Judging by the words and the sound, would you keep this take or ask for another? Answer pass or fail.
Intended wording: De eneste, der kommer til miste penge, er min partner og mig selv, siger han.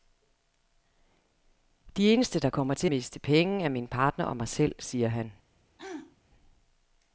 fail